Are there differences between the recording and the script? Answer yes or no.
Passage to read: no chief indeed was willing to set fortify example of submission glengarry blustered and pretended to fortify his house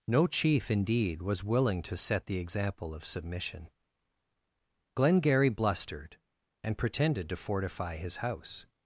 yes